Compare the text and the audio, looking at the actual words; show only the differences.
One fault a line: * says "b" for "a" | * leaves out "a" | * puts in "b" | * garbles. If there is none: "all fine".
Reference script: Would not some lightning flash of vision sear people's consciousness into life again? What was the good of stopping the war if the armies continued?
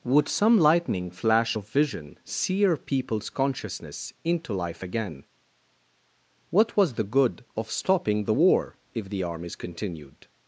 * leaves out "not"